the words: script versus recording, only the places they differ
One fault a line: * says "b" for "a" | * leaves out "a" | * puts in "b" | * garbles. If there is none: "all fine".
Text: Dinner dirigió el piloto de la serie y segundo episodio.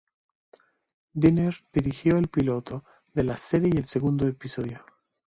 * puts in "el"